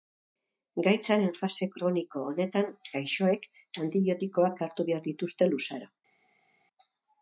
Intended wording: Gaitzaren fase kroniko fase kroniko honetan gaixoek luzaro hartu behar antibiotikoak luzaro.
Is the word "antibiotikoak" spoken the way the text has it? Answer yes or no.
no